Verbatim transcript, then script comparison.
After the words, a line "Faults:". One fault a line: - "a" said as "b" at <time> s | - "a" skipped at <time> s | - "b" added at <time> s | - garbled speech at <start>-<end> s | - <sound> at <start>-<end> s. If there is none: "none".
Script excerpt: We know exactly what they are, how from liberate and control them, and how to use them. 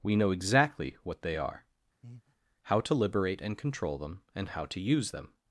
We know exactly what they are, how to liberate and control them, and how to use them.
Faults:
- breath at 2.0-2.4 s
- "from" said as "to" at 2.8 s